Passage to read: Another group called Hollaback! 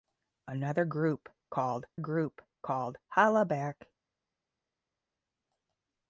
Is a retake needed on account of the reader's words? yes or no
yes